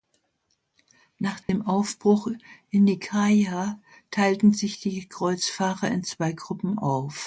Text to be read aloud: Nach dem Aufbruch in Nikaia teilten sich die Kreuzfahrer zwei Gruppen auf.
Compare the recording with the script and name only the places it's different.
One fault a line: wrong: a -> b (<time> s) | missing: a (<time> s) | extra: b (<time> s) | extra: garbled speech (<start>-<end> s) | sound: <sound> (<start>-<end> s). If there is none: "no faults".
sound: dropout (1.4-1.5 s)
extra: in (5.9 s)